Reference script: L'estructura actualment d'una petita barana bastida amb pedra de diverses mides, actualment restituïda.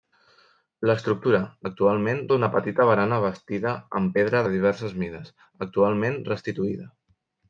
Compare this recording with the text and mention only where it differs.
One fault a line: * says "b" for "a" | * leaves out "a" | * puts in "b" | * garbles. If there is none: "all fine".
all fine